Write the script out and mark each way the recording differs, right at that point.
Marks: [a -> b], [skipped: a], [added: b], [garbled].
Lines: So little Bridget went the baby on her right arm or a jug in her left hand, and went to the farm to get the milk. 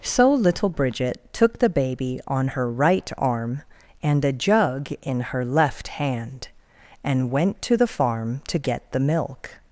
So little Bridget [went -> took] the baby on her right arm [or -> and] a jug in her left hand, and went to the farm to get the milk.